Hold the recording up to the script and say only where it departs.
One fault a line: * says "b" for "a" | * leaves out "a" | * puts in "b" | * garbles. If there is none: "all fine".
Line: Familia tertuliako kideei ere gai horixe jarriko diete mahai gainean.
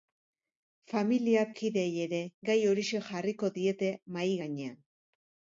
* leaves out "tertuliako"